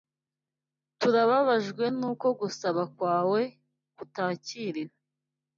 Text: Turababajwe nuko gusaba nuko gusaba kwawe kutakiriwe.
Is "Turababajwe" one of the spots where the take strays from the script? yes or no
no